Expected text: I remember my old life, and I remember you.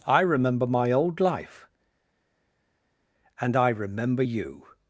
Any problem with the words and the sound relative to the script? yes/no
no